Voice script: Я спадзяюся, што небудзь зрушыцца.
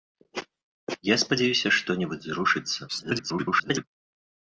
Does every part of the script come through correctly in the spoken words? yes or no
no